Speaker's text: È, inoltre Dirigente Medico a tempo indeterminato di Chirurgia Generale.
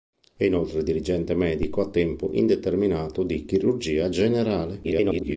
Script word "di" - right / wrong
right